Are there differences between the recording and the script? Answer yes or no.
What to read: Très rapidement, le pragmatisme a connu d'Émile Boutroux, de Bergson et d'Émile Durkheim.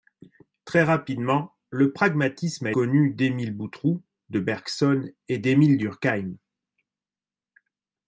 no